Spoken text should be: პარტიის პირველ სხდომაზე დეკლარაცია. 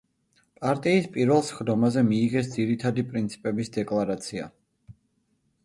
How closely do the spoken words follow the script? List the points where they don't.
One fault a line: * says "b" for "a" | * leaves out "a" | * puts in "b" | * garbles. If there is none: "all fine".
* puts in "მიიღეს ძირითადი პრინციპების"